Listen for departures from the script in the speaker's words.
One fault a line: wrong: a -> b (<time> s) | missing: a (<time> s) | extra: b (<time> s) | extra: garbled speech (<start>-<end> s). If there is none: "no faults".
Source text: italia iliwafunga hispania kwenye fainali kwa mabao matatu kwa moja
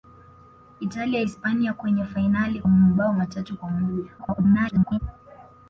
missing: iliwafunga (1.2 s)
missing: kwa (2.6 s)
extra: garbled speech (4.2-5.0 s)